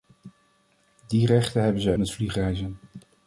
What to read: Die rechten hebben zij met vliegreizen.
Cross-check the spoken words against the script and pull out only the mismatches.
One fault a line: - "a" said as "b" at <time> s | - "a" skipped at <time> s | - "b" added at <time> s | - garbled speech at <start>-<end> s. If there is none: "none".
none